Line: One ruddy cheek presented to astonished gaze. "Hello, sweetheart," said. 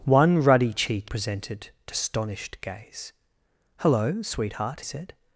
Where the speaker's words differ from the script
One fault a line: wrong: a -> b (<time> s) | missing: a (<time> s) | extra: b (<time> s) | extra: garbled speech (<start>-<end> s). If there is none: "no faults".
no faults